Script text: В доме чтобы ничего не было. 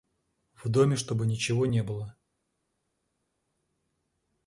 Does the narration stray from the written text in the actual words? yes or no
no